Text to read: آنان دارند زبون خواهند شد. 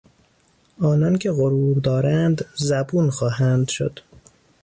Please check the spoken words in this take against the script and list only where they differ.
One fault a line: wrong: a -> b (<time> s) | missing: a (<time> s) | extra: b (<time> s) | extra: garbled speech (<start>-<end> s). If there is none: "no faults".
extra: که غرور (1.2 s)